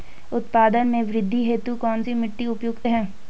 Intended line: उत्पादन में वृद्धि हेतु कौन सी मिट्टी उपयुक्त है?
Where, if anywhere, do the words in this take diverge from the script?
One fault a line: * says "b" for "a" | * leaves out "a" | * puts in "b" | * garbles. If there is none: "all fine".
all fine